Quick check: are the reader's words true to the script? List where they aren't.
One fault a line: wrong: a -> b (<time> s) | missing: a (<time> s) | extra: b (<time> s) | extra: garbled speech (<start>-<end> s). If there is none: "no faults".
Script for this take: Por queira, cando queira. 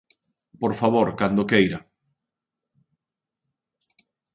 wrong: queira -> favor (0.8 s)